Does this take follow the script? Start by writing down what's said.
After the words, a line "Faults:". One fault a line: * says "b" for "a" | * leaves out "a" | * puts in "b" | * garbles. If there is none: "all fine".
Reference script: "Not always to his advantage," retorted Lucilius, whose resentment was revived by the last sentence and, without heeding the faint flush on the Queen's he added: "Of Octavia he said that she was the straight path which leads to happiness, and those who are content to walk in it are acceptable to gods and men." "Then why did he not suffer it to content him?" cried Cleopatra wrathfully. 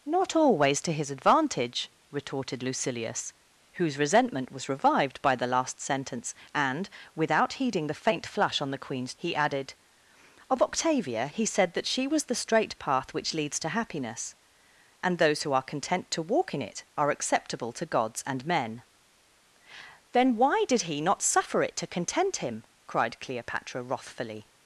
"Not always to his advantage," retorted Lucilius, whose resentment was revived by the last sentence and, without heeding the faint flush on the Queen's he added: "Of Octavia he said that she was the straight path which leads to happiness, and those who are content to walk in it are acceptable to gods and men." "Then why did he not suffer it to content him?" cried Cleopatra wrathfully.
Faults:
all fine